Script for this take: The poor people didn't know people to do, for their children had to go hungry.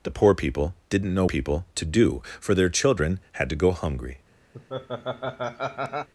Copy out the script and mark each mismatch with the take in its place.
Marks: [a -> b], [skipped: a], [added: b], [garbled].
The poor people didn't know people to do, for their children had to go hungry.